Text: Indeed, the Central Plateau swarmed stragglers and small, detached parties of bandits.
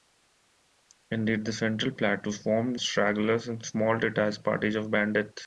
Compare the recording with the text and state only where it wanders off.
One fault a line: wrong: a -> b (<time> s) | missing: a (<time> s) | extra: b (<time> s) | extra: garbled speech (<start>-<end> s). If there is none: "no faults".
no faults